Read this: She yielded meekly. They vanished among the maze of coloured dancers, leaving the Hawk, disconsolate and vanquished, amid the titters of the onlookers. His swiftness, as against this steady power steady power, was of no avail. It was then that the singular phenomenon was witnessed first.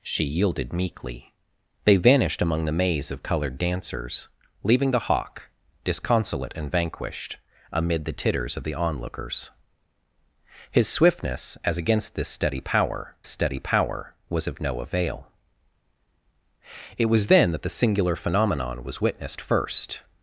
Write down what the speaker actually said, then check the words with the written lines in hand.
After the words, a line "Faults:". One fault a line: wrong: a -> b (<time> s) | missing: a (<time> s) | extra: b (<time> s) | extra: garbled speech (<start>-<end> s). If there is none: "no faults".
She yielded meekly. They vanished among the maze of coloured dancers, leaving the Hawk, disconsolate and vanquished, amid the titters of the onlookers. His swiftness, as against this steady power steady power, was of no avail. It was then that the singular phenomenon was witnessed first.
Faults:
no faults